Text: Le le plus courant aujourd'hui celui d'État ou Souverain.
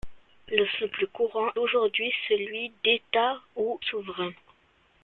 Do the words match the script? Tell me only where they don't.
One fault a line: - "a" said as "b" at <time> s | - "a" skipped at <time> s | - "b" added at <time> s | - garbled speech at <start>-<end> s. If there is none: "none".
none